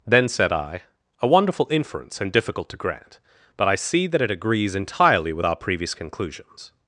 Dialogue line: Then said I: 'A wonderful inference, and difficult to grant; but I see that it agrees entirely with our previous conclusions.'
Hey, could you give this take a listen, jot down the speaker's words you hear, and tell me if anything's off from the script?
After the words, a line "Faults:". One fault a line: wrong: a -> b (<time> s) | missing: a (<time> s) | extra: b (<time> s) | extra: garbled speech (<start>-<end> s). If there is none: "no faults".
Then said I: 'A wonderful inference, and difficult to grant; but I see that it agrees entirely with our previous conclusions.'
Faults:
no faults